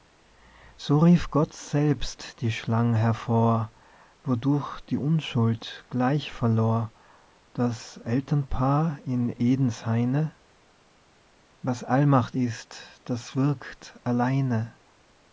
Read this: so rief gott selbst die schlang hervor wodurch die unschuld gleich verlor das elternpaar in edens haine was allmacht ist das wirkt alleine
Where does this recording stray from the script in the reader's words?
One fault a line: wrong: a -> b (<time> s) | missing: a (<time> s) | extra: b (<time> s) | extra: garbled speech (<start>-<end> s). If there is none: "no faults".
no faults